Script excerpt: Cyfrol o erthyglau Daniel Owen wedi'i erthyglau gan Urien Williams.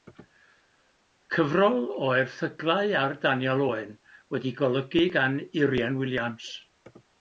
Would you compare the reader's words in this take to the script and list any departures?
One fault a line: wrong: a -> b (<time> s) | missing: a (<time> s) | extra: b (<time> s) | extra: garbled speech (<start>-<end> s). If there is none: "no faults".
extra: ar (3.0 s)
wrong: erthyglau -> golygu (4.6 s)